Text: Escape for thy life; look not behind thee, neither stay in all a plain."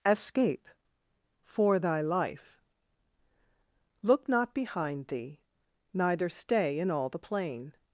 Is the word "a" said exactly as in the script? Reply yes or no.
no